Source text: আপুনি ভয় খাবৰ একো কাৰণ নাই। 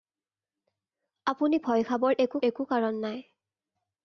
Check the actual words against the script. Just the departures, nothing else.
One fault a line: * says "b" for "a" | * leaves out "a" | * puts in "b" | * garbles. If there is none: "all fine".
* puts in "একো"